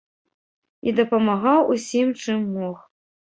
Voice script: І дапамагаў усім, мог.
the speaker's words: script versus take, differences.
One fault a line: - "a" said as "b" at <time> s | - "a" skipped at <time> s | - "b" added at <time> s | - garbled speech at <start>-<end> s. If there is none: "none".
- "чым" added at 2.2 s